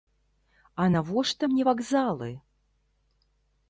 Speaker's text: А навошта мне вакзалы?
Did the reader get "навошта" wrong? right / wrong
right